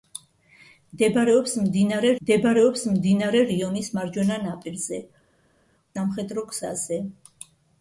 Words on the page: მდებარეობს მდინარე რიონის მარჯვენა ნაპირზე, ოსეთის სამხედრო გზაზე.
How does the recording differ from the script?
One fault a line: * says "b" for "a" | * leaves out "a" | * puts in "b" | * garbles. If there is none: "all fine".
* puts in "მდებარეობს მდინარე"
* leaves out "ოსეთის"